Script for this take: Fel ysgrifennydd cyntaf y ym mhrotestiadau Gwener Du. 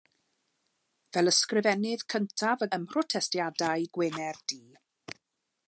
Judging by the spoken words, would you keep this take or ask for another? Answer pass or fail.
pass